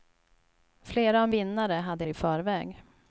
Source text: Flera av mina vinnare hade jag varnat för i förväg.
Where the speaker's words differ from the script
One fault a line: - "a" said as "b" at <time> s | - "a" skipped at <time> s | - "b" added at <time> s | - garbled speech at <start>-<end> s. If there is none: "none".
- "mina" skipped at 1.3 s
- "jag varnat för" skipped at 2.0 s